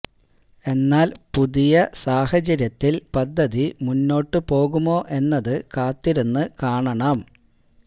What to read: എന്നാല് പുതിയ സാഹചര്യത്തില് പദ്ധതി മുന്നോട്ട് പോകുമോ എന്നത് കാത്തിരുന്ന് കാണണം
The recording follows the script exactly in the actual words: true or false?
true